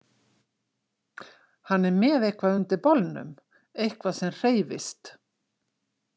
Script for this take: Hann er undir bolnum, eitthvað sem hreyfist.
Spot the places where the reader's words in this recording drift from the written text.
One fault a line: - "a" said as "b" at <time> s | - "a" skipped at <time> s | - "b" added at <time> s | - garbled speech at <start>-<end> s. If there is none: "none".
- "með eitthvað" added at 2.0 s